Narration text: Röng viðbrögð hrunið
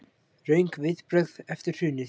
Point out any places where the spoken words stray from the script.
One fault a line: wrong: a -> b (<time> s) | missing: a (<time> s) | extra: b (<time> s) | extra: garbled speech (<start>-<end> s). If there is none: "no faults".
extra: eftir (1.6 s)